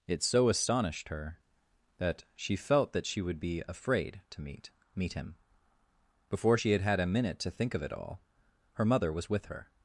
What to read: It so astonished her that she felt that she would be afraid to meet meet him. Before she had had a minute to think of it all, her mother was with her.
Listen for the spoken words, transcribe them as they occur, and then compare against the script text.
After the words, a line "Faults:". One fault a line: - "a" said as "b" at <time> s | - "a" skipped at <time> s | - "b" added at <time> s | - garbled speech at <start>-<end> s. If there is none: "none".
It so astonished her that she felt that she would be afraid to meet meet him. Before she had had a minute to think of it all, her mother was with her.
Faults:
none